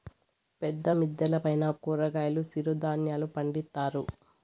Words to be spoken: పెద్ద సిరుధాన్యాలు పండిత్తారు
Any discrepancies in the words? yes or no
yes